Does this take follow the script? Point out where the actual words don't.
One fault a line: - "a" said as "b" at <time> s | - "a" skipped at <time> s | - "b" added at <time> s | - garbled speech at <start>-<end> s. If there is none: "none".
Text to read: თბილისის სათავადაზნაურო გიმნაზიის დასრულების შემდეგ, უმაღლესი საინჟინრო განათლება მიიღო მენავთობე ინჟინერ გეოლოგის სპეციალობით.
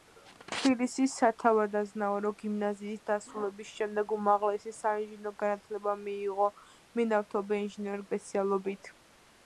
- "გეოლოგის" skipped at 8.1 s